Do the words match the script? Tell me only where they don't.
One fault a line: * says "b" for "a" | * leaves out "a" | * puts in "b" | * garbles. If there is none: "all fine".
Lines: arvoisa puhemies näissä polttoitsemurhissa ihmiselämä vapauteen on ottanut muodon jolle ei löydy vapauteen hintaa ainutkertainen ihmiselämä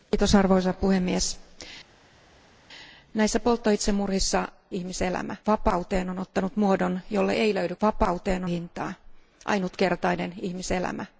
all fine